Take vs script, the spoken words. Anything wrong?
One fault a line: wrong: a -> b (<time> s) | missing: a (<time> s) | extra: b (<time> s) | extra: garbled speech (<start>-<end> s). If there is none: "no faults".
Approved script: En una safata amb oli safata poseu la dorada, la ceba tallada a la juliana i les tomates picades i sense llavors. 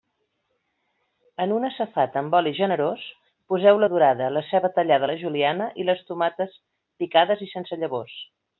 wrong: safata -> generós (2.6 s)